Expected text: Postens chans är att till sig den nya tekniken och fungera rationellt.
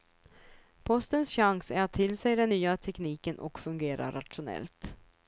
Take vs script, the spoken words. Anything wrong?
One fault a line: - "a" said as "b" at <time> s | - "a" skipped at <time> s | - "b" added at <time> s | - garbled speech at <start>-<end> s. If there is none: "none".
none